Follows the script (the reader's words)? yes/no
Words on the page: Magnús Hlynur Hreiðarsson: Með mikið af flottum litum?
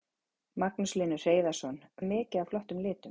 yes